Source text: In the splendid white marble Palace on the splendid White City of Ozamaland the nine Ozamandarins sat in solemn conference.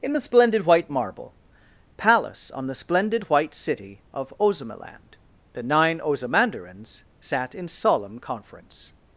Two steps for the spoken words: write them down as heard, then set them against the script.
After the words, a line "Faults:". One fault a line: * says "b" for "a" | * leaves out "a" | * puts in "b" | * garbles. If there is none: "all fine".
In the splendid white marble Palace on the splendid White City of Ozamaland the nine Ozamandarins sat in solemn conference.
Faults:
all fine